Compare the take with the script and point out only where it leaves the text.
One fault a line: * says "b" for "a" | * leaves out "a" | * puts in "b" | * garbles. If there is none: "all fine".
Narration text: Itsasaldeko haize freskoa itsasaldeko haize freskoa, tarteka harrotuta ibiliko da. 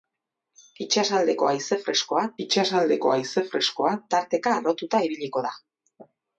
all fine